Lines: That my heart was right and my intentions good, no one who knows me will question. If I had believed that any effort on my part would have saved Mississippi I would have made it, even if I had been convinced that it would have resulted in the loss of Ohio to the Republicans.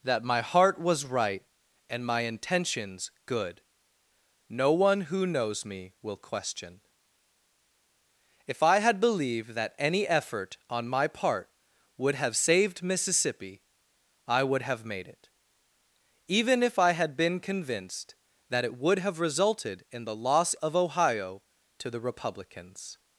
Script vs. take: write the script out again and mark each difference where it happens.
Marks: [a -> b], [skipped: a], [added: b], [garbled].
That my heart was right and my intentions good, no one who knows me will question. If I had believed that any effort on my part would have saved Mississippi I would have made it, even if I had been convinced that it would have resulted in the loss of Ohio to the Republicans.